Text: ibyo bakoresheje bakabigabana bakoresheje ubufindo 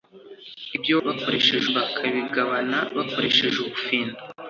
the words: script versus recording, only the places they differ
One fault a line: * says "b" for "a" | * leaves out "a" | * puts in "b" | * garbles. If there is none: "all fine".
all fine